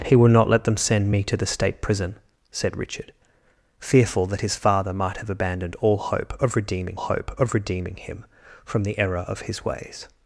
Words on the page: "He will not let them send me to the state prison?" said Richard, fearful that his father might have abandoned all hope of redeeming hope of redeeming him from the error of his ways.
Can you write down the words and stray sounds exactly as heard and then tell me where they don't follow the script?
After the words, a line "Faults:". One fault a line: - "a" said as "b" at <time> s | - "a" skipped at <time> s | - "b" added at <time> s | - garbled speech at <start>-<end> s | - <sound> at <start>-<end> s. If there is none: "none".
"He will not let them send me to the state prison?" said Richard, fearful that his father might have abandoned all hope of redeeming hope of redeeming him from the error of his ways.
Faults:
none